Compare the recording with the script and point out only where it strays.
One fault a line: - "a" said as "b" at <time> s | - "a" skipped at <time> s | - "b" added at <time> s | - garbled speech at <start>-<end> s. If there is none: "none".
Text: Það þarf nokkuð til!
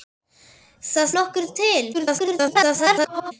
- "þarf" skipped at 1.1 s
- garbled speech at 1.9-3.3 s